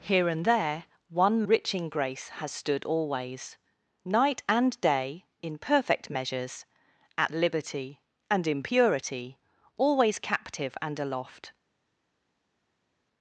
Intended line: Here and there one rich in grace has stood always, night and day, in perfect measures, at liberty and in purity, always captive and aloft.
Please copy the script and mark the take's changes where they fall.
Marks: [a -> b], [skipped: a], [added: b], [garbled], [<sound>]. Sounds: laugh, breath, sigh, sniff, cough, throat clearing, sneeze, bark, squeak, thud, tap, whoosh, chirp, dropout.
Here and there one rich in grace has stood always, night and day, in perfect measures, at liberty and in purity, always captive and aloft.